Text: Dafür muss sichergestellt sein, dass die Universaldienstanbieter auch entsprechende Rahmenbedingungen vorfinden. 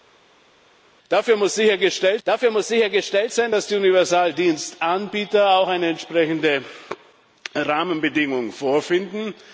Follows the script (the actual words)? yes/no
no